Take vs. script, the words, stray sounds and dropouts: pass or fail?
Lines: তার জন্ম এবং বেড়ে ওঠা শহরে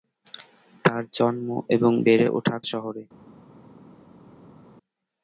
pass